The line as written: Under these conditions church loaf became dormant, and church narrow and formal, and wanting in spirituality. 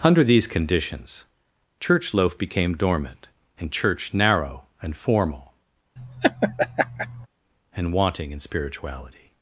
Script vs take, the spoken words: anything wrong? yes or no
no